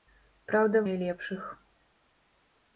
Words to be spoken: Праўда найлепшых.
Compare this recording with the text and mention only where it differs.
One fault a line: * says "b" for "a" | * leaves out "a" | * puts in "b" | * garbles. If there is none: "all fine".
all fine